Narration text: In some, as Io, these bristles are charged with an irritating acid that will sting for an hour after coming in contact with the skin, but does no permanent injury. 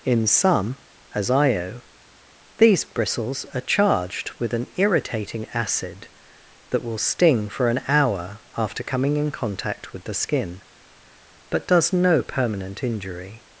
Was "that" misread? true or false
false